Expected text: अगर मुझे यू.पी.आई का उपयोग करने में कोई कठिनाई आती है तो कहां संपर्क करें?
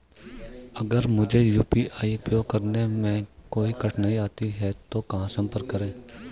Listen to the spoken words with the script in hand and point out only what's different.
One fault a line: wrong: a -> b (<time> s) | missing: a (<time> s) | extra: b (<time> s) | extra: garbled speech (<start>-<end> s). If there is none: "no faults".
missing: का (2.2 s)